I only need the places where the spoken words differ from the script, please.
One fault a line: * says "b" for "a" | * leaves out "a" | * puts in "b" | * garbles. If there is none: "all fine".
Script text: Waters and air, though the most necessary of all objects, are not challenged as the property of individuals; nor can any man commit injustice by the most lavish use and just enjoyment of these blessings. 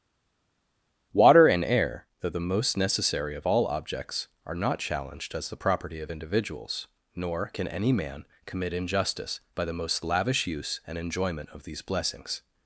* says "Water" for "Waters"
* leaves out "just"